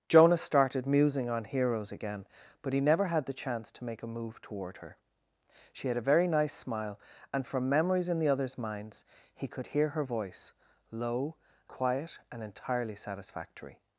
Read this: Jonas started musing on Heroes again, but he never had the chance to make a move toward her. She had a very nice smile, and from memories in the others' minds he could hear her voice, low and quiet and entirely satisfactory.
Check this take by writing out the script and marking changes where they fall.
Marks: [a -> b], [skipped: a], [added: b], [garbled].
Jonas started musing on Heroes again, but he never had the chance to make a move toward her. She had a very nice smile, and from memories in the others' minds he could hear her voice, low [skipped: and] quiet and entirely satisfactory.